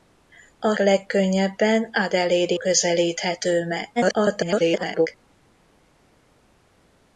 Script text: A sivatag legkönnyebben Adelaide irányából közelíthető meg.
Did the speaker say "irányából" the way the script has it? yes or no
no